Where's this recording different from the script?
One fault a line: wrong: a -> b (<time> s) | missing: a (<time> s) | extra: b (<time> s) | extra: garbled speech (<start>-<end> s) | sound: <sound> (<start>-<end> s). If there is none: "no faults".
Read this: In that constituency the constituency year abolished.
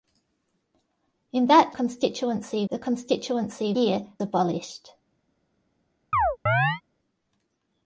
sound: chirp (6.1-6.8 s)